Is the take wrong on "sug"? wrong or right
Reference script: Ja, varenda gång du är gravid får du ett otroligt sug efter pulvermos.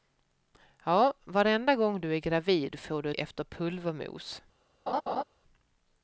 wrong